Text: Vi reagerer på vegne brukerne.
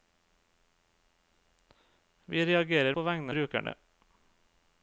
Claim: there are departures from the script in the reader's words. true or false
false